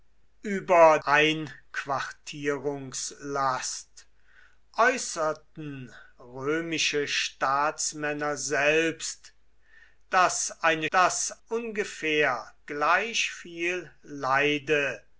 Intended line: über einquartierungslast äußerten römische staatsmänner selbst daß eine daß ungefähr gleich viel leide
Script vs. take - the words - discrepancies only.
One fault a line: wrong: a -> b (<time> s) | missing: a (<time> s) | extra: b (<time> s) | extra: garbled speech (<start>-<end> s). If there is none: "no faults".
no faults